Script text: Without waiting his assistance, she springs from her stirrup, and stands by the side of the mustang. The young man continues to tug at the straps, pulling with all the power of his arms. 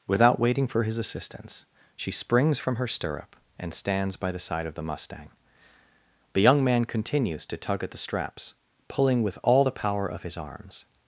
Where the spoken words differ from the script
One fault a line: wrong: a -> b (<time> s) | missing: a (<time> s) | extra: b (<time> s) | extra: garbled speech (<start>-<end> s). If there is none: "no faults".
extra: for (0.7 s)